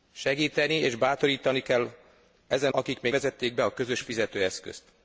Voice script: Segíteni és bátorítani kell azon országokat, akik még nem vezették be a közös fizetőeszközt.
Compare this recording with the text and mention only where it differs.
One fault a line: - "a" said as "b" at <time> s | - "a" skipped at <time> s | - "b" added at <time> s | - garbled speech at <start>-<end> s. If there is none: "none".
- "azon országokat" skipped at 1.9 s
- "nem" skipped at 3.1 s